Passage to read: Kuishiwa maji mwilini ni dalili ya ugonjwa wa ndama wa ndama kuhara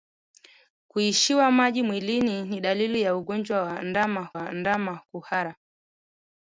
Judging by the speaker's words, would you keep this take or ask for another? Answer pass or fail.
pass